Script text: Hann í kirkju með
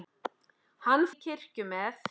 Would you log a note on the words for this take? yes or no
no